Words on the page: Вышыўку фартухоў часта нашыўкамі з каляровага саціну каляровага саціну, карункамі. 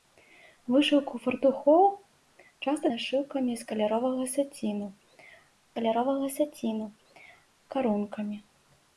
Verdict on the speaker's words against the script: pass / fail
pass